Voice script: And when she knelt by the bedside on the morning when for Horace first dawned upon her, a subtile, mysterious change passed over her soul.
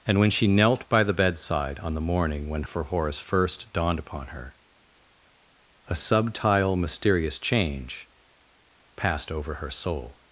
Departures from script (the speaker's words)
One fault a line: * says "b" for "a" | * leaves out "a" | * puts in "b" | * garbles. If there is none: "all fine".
all fine